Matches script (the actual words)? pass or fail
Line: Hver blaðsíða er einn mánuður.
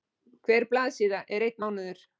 pass